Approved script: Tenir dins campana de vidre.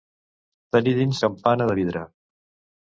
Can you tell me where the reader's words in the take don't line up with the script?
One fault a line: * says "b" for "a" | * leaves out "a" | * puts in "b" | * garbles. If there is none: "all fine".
all fine